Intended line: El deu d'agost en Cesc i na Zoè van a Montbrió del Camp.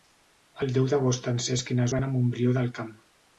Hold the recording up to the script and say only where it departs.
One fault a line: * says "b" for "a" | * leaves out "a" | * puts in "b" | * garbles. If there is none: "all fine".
* leaves out "Zoè"